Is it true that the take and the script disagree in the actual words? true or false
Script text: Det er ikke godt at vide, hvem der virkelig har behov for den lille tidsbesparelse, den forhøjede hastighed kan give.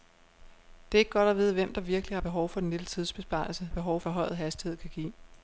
true